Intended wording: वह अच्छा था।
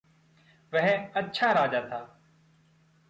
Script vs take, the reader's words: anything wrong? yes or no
yes